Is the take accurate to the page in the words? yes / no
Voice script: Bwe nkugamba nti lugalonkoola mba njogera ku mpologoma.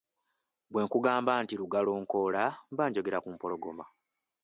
yes